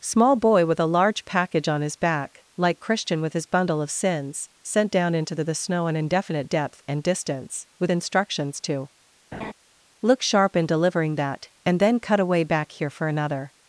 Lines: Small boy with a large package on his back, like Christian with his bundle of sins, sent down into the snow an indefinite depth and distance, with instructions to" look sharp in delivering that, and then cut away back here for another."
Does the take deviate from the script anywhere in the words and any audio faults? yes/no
yes